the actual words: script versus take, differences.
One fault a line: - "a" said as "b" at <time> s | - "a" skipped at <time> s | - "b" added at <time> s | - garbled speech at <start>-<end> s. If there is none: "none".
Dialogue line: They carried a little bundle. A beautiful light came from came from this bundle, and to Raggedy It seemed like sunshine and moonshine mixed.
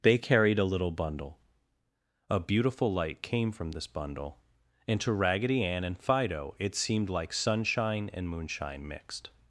- "came from" skipped at 3.7 s
- "Ann and Fido" added at 5.6 s